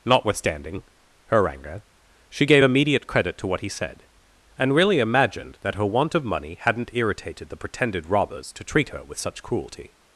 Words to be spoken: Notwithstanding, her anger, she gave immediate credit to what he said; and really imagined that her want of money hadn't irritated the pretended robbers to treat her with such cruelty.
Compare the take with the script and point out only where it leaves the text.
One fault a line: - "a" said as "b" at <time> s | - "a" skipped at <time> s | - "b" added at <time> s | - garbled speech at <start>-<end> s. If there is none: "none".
none